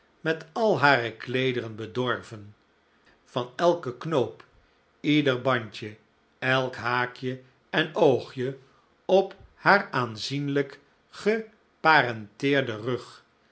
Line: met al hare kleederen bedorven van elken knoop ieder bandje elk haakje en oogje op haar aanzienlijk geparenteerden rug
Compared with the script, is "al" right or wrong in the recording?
right